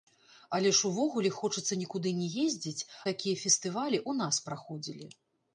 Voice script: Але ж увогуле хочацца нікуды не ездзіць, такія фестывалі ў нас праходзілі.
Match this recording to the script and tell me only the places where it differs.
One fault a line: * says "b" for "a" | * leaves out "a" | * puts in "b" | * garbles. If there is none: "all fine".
all fine